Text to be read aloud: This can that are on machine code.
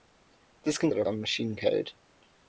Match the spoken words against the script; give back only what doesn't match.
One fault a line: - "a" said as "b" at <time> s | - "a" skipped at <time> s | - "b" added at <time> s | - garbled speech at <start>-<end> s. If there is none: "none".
none